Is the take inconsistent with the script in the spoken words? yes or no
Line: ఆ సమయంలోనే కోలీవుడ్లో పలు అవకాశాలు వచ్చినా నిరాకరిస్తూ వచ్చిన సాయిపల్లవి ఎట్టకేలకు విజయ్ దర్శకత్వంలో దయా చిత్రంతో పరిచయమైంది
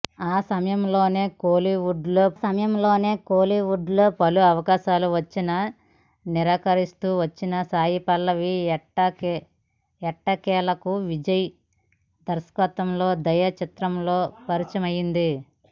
yes